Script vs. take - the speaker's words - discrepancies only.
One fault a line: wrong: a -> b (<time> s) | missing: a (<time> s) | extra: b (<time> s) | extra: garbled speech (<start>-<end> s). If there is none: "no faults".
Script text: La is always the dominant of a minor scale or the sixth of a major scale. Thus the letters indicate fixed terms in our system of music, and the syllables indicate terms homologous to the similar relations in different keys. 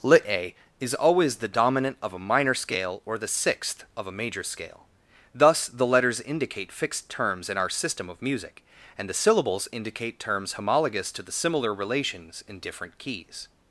wrong: La -> Lit a (0.0 s)